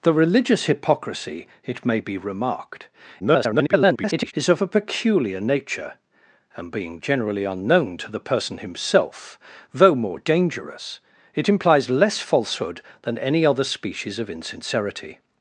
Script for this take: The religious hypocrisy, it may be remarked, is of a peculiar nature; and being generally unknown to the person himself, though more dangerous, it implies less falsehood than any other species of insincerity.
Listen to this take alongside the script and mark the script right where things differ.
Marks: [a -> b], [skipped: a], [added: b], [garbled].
The religious hypocrisy, it may be remarked, [garbled] is of a peculiar nature; and being generally unknown to the person himself, though more dangerous, it implies less falsehood than any other species of insincerity.